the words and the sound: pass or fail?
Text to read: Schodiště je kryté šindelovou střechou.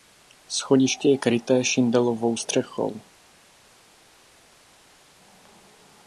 pass